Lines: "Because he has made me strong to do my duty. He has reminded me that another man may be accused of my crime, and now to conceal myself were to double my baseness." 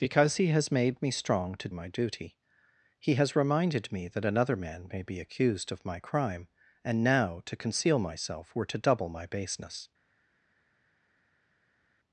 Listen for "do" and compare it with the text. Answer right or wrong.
wrong